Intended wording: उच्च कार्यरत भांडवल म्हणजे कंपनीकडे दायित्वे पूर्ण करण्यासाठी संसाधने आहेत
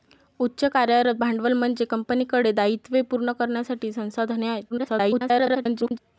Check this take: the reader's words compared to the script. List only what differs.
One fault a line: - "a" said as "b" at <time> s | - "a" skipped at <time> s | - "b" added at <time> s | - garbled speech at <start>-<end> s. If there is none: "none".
- garbled speech at 4.7-6.0 s